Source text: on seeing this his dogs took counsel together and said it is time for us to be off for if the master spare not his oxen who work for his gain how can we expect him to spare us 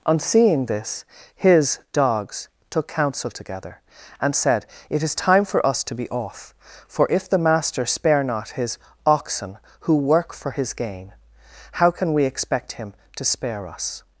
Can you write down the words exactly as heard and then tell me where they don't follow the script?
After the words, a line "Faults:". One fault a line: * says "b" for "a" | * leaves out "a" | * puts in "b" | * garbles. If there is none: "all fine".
on seeing this his dogs took counsel together and said it is time for us to be off for if the master spare not his oxen who work for his gain how can we expect him to spare us
Faults:
all fine